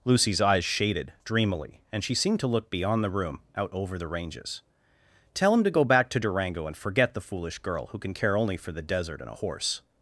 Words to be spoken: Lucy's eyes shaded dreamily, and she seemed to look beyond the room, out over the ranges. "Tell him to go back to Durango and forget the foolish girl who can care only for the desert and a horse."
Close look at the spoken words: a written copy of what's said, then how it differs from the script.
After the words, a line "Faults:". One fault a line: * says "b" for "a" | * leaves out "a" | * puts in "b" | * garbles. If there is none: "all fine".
Lucy's eyes shaded dreamily, and she seemed to look beyond the room, out over the ranges. "Tell him to go back to Durango and forget the foolish girl who can care only for the desert and a horse."
Faults:
all fine